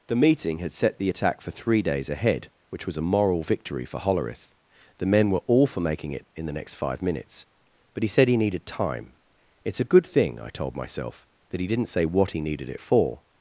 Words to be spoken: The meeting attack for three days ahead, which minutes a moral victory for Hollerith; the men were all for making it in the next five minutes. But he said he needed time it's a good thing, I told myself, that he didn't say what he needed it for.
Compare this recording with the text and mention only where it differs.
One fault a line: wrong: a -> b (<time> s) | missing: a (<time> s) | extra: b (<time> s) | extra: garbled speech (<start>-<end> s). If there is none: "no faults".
extra: had set the (0.6 s)
wrong: minutes -> was (2.9 s)